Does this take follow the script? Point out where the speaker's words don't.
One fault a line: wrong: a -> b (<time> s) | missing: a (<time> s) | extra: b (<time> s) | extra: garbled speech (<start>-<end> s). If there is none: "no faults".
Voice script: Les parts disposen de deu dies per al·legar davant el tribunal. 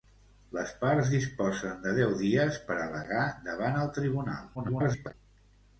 extra: garbled speech (4.5-5.1 s)